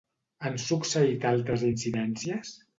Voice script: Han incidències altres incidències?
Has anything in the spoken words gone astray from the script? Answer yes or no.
yes